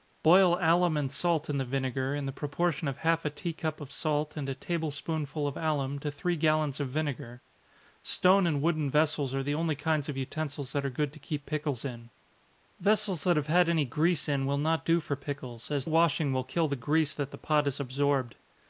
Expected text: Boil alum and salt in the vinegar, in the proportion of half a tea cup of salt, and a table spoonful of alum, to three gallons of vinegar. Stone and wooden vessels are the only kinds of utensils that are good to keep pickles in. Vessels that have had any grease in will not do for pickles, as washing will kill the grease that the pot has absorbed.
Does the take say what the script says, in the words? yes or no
yes